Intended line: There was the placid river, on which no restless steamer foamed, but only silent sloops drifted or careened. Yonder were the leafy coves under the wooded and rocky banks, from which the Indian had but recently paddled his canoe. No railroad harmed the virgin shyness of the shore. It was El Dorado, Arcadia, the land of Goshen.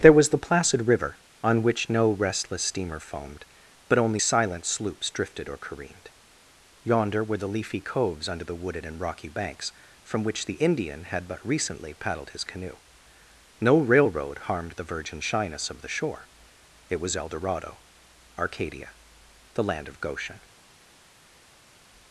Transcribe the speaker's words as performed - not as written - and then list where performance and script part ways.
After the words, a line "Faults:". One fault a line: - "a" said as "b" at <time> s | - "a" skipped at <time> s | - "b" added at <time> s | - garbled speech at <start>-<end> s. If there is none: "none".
There was the placid river, on which no restless steamer foamed, but only silent sloops drifted or careened. Yonder were the leafy coves under the wooded and rocky banks, from which the Indian had but recently paddled his canoe. No railroad harmed the virgin shyness of the shore. It was El Dorado, Arcadia, the land of Goshen.
Faults:
none